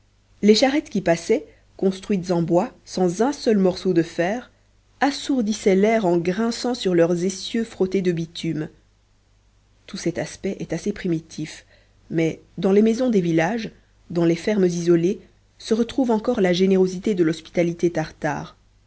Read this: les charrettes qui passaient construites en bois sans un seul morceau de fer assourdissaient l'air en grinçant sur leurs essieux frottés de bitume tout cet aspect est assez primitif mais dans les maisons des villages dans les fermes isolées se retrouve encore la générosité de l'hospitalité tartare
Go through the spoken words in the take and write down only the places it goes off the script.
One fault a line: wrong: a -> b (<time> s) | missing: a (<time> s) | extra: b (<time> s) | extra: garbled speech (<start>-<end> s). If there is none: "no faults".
no faults